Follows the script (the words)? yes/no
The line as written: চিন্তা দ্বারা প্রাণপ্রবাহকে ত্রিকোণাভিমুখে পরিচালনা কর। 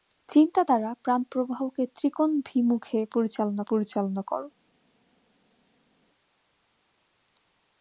no